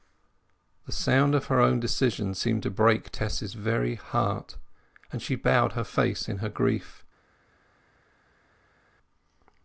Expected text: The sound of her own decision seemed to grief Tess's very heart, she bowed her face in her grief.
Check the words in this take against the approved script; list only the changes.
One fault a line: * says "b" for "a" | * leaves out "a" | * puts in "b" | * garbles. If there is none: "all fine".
* says "break" for "grief"
* puts in "and"